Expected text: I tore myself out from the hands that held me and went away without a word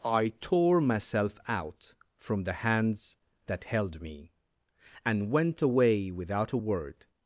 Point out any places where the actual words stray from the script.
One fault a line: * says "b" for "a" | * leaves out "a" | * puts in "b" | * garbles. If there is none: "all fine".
all fine